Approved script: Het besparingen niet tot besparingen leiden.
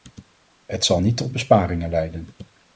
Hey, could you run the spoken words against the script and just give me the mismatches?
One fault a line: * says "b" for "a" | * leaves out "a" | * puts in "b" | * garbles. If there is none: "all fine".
* says "zal" for "besparingen"